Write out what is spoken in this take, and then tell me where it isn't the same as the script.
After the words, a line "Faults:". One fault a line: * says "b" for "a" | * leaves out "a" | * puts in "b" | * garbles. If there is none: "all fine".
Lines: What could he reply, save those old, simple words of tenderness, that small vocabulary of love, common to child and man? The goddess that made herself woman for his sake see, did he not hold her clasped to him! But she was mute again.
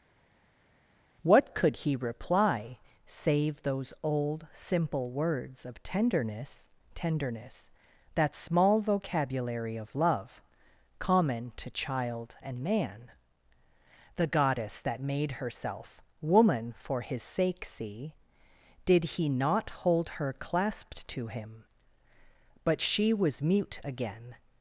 What could he reply, save those old, simple words of tenderness tenderness, that small vocabulary of love, common to child and man? The goddess that made herself woman for his sake see, did he not hold her clasped to him! But she was mute again.
Faults:
* puts in "tenderness"